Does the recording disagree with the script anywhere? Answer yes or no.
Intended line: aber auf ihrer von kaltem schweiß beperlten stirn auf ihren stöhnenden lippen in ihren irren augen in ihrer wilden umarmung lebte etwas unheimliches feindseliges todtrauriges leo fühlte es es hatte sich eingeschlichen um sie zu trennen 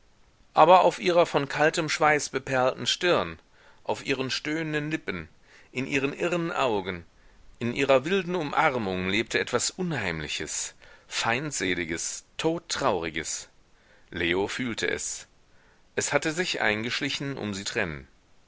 yes